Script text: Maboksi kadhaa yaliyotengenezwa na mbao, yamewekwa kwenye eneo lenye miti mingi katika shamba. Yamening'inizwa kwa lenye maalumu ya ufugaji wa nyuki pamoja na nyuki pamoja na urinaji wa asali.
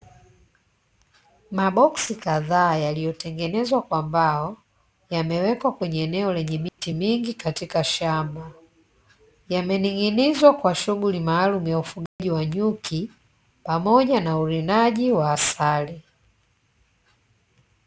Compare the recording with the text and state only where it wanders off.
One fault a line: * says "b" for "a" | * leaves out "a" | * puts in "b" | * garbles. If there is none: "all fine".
* says "kwa" for "na"
* says "shughuli" for "lenye"
* leaves out "nyuki pamoja na"